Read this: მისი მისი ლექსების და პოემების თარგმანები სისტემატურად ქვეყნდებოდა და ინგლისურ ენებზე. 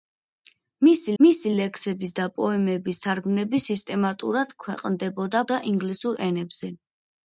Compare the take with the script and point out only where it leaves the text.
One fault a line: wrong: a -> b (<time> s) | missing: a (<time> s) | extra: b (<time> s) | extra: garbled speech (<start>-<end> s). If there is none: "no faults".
no faults